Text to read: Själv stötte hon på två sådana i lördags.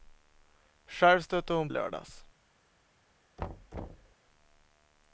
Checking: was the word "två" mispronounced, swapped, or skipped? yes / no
yes